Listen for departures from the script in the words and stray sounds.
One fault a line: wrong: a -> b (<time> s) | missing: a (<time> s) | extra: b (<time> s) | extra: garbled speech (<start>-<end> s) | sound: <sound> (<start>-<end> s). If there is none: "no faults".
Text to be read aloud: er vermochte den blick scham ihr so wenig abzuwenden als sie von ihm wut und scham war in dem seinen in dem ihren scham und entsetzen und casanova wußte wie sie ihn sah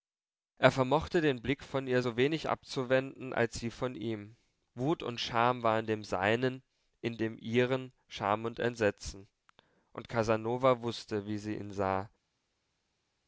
wrong: scham -> von (1.6 s)